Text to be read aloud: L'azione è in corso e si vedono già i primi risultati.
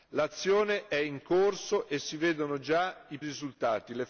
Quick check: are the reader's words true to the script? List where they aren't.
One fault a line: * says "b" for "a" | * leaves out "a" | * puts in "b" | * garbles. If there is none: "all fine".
* leaves out "primi"